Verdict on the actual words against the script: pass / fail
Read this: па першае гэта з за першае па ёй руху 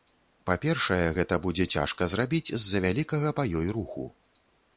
fail